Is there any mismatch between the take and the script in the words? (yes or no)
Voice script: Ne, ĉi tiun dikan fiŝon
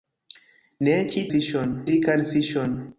yes